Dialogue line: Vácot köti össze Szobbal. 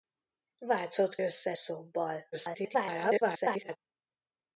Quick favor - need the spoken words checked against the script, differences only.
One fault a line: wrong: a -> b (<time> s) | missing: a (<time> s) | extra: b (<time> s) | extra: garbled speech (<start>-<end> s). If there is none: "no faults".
missing: köti (1.1 s)
extra: garbled speech (2.3-3.8 s)